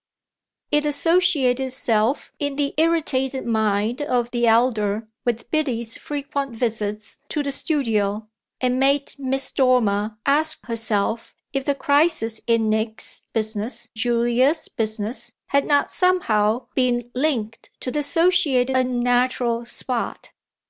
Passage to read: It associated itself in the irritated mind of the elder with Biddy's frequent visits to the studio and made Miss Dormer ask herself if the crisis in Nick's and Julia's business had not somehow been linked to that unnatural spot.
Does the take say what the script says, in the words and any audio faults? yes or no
no